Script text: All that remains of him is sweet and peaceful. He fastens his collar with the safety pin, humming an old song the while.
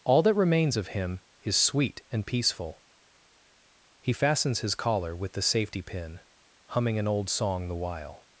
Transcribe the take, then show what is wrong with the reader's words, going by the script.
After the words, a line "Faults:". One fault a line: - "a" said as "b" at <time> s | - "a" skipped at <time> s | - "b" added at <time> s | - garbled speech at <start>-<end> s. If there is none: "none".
All that remains of him is sweet and peaceful. He fastens his collar with the safety pin, humming an old song the while.
Faults:
none